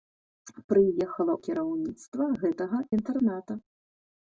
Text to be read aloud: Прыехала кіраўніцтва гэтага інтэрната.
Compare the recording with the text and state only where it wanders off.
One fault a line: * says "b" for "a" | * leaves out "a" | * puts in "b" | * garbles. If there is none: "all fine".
all fine